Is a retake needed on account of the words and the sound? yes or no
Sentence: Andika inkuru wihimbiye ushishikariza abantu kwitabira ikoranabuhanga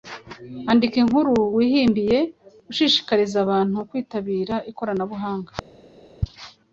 no